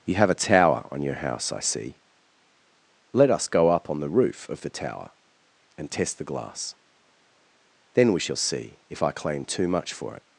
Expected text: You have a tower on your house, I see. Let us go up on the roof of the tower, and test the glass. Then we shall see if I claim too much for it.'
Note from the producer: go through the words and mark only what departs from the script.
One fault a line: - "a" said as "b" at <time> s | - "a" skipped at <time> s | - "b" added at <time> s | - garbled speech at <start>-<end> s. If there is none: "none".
none